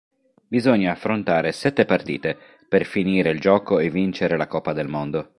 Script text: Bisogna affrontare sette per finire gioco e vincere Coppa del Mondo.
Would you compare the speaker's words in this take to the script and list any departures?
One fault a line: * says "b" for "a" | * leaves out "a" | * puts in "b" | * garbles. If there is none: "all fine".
* puts in "partite"
* puts in "il"
* puts in "la"